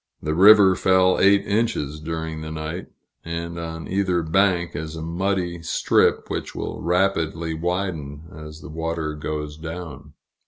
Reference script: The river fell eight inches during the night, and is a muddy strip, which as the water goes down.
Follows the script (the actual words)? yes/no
no